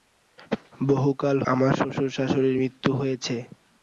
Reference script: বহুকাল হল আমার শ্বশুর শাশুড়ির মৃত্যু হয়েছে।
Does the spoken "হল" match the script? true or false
false